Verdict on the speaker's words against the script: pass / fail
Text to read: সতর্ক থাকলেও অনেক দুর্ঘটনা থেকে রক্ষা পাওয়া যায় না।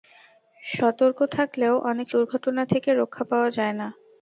pass